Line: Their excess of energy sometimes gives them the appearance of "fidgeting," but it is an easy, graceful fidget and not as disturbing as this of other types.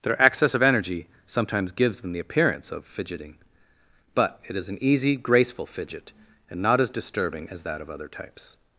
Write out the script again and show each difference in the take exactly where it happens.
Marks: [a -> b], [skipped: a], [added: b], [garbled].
Their excess of energy sometimes gives them the appearance of "fidgeting," but it is an easy, graceful fidget and not as disturbing as [this -> that] of other types.